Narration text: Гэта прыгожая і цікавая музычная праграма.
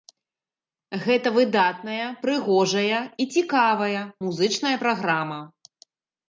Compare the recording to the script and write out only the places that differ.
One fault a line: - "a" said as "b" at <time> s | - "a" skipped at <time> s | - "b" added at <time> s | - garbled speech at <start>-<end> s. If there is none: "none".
- "выдатная" added at 1.4 s